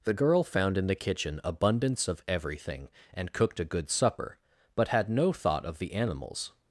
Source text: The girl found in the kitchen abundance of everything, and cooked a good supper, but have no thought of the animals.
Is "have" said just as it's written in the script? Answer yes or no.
no